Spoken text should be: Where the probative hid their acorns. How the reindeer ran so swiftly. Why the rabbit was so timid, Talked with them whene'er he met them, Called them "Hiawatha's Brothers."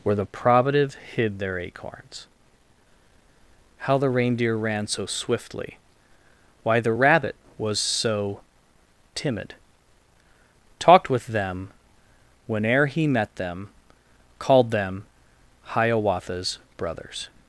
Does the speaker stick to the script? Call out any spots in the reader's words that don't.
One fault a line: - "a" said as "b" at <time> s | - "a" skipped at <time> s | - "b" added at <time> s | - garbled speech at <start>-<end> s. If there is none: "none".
none